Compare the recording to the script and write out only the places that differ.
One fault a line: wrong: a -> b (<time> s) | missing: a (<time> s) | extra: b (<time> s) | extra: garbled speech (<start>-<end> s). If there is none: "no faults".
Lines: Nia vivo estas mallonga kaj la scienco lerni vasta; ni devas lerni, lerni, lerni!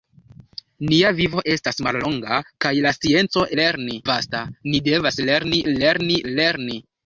no faults